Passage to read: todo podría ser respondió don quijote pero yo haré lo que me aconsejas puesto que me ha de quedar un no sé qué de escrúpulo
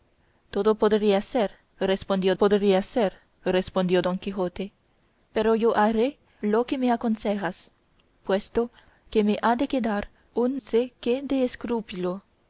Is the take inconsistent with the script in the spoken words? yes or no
yes